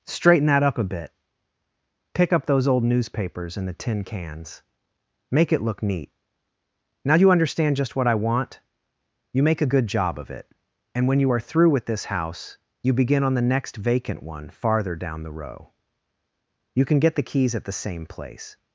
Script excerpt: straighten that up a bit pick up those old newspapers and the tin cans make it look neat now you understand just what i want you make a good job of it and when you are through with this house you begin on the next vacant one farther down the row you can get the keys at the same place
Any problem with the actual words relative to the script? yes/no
no